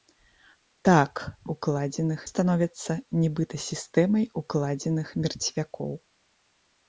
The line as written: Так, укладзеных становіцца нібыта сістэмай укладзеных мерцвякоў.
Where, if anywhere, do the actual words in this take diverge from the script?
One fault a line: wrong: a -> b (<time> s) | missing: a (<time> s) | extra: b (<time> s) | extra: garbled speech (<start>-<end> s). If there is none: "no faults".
no faults